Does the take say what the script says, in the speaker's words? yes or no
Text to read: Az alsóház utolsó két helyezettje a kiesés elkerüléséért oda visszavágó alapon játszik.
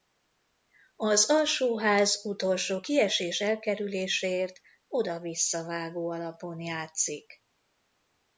no